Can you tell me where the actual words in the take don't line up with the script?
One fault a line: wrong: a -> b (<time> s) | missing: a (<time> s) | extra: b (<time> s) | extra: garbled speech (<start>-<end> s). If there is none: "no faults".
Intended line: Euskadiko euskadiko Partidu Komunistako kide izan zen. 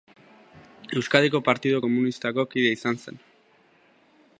missing: euskadiko (1.4 s)